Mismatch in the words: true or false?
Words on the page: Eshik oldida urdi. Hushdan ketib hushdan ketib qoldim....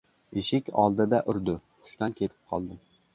true